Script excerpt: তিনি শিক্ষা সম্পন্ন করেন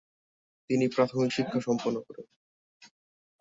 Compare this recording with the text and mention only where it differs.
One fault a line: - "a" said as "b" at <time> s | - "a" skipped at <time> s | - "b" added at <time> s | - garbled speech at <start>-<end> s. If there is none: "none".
- "প্রাথমিক" added at 0.9 s